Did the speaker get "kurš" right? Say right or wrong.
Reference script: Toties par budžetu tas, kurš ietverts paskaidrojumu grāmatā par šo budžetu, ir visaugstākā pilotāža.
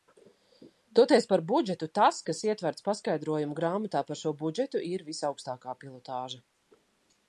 wrong